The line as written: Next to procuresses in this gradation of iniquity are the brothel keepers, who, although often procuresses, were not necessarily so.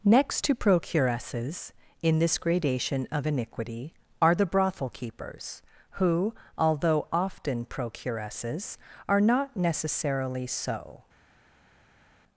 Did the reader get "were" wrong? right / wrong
wrong